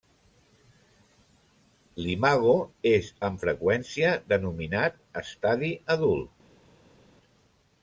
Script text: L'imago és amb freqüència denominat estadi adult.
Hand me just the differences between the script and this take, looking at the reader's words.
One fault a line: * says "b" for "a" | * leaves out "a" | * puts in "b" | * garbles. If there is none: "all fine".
all fine